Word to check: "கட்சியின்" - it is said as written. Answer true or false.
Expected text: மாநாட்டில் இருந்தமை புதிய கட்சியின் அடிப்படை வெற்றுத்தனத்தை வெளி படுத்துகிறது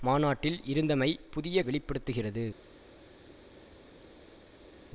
false